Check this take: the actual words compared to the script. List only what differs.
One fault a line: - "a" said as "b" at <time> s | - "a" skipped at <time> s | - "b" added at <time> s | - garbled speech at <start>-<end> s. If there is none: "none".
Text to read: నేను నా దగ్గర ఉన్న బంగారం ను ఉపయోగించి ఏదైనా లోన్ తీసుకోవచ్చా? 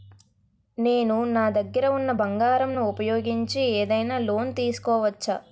none